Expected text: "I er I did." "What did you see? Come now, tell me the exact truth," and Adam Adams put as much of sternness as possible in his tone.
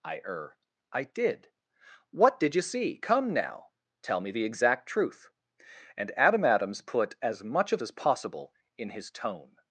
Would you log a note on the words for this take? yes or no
yes